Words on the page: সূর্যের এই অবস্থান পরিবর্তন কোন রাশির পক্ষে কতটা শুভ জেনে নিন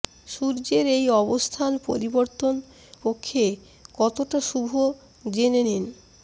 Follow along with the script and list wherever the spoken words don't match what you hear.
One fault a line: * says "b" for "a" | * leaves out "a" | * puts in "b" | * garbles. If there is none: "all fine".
* leaves out "কোন রাশির"